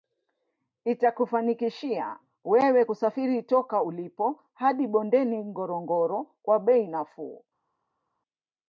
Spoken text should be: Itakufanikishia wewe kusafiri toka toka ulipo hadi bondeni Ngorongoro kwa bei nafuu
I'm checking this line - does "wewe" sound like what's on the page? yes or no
yes